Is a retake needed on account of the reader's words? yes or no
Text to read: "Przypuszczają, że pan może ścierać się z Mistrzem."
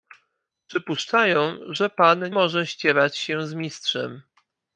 no